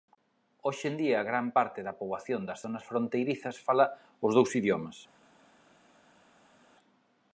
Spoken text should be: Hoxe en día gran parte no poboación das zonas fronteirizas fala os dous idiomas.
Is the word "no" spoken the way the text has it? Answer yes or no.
no